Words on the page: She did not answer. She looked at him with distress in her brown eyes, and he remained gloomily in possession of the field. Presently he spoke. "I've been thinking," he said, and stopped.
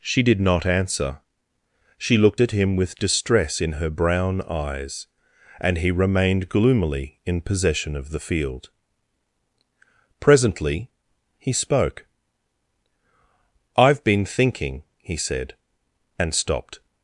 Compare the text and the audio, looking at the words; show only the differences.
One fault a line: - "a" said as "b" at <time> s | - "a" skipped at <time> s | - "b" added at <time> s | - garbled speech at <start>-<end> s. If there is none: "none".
none